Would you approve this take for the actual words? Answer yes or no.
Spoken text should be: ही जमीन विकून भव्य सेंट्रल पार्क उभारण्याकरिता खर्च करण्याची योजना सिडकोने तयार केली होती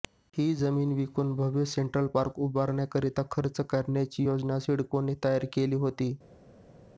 yes